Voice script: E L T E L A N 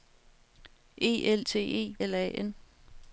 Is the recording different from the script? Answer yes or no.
no